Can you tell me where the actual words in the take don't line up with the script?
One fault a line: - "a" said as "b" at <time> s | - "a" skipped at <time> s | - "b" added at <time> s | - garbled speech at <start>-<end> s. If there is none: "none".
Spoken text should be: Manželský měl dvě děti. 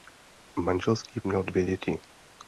none